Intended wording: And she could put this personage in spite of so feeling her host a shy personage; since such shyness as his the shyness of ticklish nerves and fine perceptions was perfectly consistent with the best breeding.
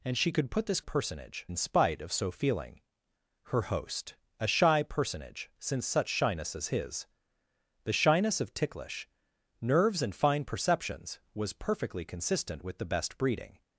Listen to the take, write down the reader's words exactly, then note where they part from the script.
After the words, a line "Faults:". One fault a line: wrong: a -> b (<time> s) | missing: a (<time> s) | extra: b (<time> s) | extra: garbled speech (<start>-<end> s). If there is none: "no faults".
And she could put this personage in spite of so feeling her host a shy personage; since such shyness as his the shyness of ticklish nerves and fine perceptions was perfectly consistent with the best breeding.
Faults:
no faults